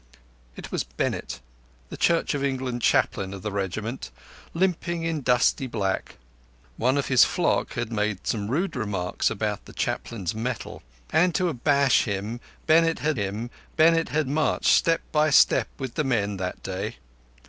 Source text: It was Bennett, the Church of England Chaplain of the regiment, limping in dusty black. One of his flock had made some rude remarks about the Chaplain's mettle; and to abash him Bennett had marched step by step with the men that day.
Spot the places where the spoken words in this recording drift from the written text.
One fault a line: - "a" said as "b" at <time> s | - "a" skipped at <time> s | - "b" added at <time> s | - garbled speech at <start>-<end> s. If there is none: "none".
- "him Bennett had" added at 13.2 s